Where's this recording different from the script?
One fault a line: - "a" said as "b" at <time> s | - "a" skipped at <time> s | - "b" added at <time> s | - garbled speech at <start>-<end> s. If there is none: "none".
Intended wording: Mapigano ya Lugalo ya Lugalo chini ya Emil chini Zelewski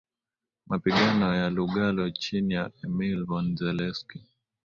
- "ya Lugalo" skipped at 2.1 s
- "chini" said as "von" at 3.2 s